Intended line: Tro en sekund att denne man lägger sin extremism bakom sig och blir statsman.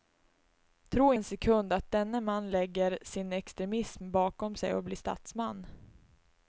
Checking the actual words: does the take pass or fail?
pass